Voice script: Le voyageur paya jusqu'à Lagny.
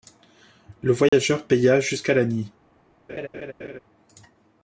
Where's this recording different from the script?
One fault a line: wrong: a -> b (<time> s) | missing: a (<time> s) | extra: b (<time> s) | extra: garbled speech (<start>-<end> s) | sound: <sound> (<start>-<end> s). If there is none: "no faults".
sound: dropout (1.1-1.1 s)
sound: laugh (3.1-3.8 s)